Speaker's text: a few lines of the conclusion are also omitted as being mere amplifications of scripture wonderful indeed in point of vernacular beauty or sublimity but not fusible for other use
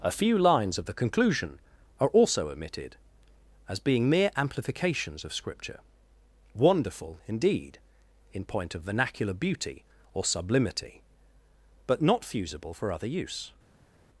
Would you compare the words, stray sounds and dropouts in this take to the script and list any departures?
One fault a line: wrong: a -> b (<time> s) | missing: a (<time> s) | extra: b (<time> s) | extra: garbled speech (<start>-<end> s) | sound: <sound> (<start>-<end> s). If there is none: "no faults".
no faults